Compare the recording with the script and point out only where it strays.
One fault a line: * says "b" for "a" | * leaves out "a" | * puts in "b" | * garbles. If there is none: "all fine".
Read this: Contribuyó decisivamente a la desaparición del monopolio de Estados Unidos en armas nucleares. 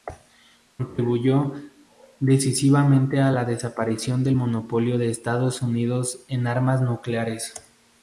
all fine